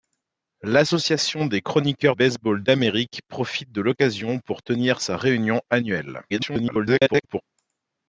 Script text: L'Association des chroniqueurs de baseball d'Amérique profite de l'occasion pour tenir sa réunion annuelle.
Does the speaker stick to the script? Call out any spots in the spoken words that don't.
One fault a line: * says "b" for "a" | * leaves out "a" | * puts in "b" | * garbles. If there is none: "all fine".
* leaves out "de"
* garbles